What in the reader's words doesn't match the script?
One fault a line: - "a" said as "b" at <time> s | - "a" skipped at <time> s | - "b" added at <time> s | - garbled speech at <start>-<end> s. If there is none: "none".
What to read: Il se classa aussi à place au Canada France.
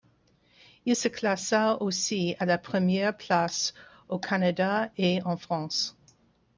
- "la première" added at 2.4 s
- "et en" added at 5.0 s